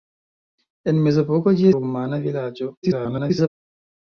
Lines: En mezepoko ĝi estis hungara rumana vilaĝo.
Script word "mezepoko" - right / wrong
right